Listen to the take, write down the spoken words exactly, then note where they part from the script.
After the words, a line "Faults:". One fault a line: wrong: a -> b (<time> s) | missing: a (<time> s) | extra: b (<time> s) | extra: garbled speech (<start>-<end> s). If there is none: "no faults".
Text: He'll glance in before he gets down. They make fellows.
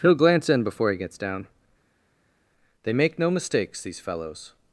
He'll glance in before he gets down. They make no mistakes, these fellows.
Faults:
extra: no mistakes these (3.2 s)